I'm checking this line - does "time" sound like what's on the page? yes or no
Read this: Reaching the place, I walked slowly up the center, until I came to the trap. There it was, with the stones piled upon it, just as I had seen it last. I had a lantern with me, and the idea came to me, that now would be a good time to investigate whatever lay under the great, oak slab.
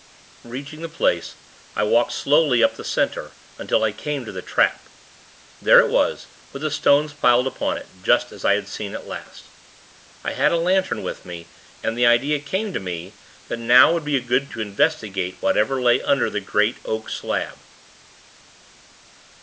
no